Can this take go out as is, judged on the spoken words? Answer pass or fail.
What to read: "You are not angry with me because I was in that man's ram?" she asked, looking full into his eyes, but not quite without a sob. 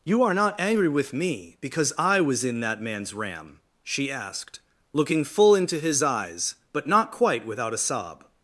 pass